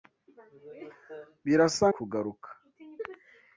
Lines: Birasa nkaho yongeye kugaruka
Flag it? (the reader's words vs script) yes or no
yes